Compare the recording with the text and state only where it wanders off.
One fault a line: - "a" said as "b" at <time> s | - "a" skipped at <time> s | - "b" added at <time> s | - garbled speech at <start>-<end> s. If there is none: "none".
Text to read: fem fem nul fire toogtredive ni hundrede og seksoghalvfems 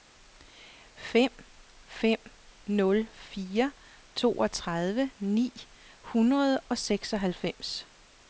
none